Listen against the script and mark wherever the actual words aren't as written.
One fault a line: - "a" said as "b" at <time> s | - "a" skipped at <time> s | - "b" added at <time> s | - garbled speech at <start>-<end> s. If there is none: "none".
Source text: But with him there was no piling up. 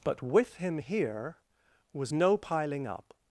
- "there" said as "here" at 0.8 s